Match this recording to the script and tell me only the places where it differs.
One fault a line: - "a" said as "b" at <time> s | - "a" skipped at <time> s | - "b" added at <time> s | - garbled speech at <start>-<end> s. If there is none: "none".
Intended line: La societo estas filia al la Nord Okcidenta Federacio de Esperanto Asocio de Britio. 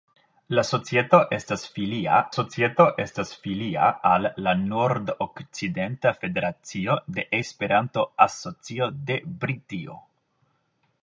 - "societo estas filia" added at 2.3 s